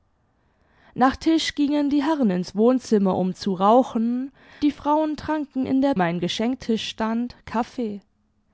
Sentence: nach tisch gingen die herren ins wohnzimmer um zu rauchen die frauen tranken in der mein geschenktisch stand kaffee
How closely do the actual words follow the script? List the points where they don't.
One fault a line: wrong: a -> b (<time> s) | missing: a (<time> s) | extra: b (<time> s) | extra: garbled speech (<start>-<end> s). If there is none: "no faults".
no faults